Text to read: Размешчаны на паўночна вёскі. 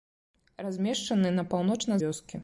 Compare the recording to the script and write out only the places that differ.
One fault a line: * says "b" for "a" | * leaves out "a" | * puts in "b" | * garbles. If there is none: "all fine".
all fine